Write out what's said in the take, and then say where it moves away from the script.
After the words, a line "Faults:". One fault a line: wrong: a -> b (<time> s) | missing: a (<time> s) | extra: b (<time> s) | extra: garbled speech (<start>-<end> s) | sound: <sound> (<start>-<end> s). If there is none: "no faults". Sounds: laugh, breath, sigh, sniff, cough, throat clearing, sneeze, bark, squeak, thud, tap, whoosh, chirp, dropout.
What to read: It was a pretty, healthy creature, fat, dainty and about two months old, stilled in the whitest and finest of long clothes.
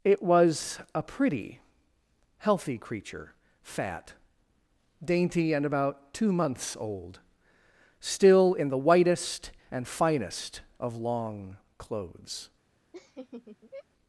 It was a pretty, healthy creature, fat, dainty and about two months old, still in the whitest and finest of long clothes.
Faults:
wrong: stilled -> still (8.0 s)
sound: laugh (12.9-13.9 s)